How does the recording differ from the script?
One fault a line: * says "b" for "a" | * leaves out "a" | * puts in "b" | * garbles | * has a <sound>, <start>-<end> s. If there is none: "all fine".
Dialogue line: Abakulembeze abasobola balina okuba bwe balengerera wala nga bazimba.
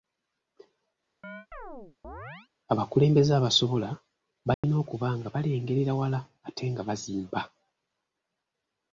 * has a chirp, 1.2-2.5 s
* has a dropout, 4.5-4.6 s
* says "nga" for "bwe"
* puts in "ate"